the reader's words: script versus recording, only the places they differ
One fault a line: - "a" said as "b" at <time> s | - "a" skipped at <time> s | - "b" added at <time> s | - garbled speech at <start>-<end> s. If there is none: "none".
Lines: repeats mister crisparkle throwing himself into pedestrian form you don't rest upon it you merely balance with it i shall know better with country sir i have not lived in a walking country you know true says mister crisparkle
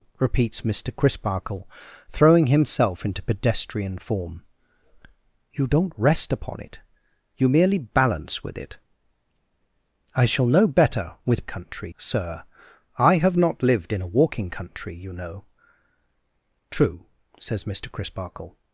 none